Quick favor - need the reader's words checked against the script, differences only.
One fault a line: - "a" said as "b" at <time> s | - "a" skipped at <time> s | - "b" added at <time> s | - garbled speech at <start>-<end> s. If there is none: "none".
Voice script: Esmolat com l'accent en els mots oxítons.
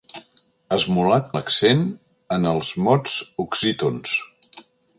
- "com" skipped at 1.3 s